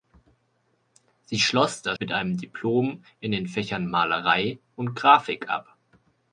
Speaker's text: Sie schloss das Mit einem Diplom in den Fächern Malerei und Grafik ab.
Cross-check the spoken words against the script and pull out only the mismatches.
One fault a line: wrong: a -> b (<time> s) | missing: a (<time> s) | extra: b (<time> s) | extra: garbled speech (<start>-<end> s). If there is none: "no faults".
no faults